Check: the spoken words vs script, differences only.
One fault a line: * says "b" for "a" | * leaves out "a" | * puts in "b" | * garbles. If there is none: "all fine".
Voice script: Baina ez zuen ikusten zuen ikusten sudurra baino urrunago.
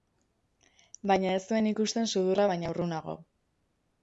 * leaves out "zuen ikusten"